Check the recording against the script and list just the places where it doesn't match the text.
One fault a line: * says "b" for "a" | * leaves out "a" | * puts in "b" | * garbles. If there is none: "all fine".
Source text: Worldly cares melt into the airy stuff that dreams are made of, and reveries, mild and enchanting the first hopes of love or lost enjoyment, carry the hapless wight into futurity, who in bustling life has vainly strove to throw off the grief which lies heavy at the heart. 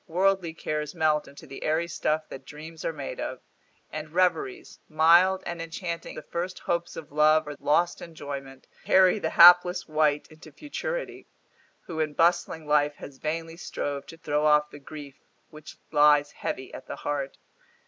all fine